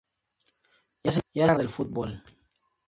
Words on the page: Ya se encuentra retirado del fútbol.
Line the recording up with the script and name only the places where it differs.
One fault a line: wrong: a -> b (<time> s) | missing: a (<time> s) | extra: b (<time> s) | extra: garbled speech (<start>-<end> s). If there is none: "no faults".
missing: retirado (1.6 s)